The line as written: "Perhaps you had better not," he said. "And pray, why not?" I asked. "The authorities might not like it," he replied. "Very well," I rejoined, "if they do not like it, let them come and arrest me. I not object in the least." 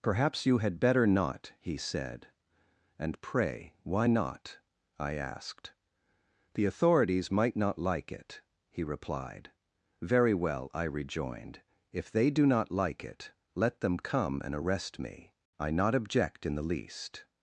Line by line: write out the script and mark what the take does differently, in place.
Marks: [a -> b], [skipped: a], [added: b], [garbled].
"Perhaps you had better not," he said. "And pray, why not?" I asked. "The authorities might not like it," he replied. "Very well," I rejoined, "if they do not like it, let them come and arrest me. I not object in the least."